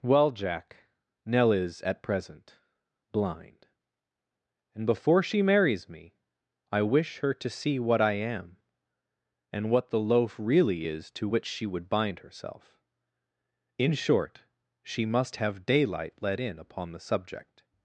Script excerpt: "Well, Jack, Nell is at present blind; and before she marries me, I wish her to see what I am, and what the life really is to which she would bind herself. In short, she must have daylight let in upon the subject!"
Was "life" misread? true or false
true